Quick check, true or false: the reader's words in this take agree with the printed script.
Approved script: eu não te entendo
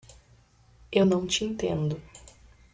true